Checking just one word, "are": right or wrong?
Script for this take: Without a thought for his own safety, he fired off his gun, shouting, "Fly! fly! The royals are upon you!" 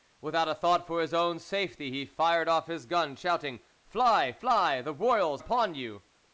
wrong